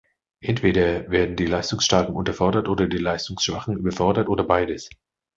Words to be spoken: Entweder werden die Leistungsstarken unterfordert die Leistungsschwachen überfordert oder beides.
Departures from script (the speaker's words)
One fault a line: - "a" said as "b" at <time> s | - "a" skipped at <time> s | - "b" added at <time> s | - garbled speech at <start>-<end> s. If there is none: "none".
- "oder" added at 2.7 s